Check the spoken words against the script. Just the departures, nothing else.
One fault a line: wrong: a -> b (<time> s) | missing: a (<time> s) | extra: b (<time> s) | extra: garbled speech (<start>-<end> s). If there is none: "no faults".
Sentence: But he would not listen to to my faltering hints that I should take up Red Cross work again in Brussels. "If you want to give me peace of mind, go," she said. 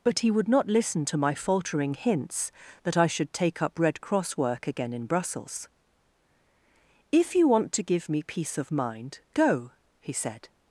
missing: to (1.2 s)
wrong: she -> he (10.0 s)